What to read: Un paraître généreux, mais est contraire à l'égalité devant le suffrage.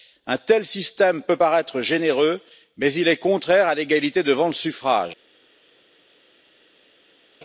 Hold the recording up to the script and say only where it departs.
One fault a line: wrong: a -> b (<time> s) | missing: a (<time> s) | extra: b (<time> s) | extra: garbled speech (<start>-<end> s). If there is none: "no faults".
extra: tel système peut (0.4 s)
extra: il (2.9 s)